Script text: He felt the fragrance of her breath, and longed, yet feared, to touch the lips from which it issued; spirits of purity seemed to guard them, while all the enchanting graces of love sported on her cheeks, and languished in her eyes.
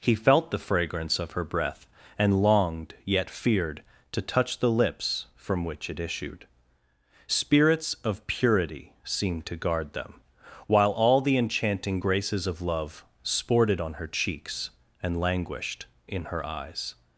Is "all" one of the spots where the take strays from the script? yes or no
no